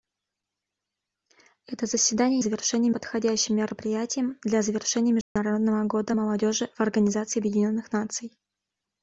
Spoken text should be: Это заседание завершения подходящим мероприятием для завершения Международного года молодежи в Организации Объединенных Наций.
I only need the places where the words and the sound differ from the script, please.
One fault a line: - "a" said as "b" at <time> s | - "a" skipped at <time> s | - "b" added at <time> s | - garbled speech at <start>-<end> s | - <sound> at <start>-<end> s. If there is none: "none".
- dropout at 5.2-5.4 s